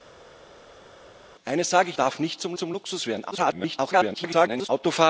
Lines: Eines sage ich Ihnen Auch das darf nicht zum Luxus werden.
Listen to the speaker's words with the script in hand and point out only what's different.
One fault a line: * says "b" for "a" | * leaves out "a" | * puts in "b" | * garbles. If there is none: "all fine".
* leaves out "Ihnen Auch das"
* puts in "zum"
* garbles